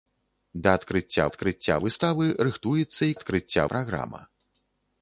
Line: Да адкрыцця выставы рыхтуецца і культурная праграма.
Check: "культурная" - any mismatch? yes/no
yes